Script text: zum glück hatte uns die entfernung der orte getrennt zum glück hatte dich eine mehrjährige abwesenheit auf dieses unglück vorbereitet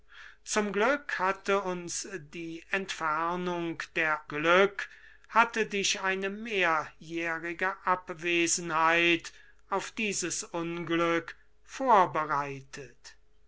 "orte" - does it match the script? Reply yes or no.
no